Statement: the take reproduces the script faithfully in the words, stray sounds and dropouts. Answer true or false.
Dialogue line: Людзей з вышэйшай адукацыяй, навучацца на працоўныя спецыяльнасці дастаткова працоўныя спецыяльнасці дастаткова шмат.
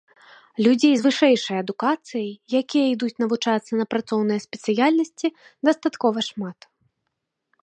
false